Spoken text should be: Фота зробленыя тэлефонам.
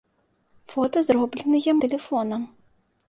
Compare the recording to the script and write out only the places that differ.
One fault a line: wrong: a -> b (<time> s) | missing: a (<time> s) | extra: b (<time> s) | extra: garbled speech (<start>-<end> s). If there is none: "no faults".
no faults